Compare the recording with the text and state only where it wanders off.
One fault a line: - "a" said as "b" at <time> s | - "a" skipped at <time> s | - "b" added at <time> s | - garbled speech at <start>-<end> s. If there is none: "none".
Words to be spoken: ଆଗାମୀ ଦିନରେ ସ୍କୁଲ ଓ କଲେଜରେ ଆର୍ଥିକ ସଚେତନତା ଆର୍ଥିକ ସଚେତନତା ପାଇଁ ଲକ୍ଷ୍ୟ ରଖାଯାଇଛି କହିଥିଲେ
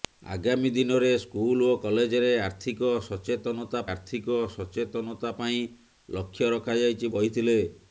none